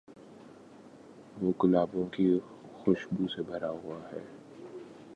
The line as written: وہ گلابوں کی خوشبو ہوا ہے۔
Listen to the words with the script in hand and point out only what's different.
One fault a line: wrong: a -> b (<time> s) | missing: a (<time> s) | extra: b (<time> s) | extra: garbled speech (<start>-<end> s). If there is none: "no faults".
extra: سے بھرا (3.3 s)